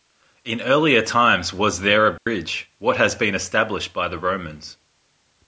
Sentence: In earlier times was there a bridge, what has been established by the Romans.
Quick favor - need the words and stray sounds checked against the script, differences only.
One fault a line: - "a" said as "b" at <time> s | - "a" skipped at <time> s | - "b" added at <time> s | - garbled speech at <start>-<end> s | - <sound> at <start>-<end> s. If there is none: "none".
- dropout at 2.2-2.3 s